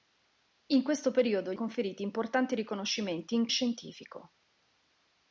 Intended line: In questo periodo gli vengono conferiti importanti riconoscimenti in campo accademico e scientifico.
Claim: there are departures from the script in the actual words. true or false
true